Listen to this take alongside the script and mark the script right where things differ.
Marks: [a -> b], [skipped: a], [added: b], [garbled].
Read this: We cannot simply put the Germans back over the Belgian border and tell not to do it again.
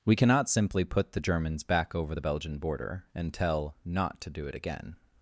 We cannot simply put the Germans back over the Belgian border and tell not to do it again.